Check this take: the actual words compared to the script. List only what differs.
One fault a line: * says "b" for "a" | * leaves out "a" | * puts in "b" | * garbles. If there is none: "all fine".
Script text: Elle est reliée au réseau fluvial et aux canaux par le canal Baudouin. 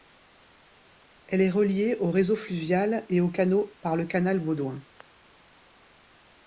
all fine